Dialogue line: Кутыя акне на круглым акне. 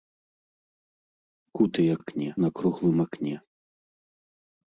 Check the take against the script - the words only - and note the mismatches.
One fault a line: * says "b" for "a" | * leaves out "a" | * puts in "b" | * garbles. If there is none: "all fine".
all fine